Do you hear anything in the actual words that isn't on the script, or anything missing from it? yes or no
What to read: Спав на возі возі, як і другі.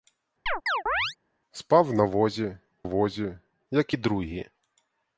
no